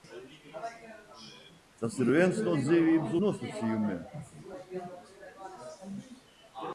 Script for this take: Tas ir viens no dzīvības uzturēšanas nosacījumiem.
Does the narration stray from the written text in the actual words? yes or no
yes